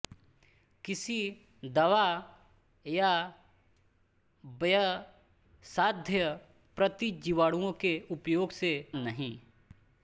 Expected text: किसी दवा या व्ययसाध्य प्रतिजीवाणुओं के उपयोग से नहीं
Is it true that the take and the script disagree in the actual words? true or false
false